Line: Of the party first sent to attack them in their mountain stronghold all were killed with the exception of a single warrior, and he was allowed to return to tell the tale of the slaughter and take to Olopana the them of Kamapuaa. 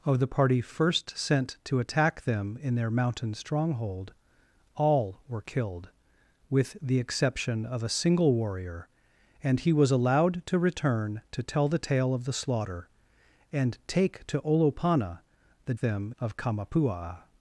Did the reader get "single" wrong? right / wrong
right